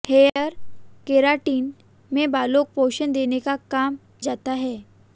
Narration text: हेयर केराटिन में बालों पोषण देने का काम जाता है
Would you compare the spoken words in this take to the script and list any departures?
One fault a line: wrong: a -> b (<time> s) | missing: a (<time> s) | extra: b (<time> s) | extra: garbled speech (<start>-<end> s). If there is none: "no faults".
no faults